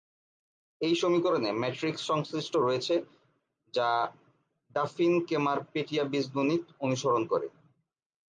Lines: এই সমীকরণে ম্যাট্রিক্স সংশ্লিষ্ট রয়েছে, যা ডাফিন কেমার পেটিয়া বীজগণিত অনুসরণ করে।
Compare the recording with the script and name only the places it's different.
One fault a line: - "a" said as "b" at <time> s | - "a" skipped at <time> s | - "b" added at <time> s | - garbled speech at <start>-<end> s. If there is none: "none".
none